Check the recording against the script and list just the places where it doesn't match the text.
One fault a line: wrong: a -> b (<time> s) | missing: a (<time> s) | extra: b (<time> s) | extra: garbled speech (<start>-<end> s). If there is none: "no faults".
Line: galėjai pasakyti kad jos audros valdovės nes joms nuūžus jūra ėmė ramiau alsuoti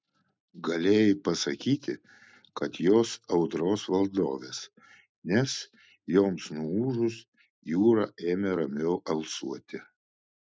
no faults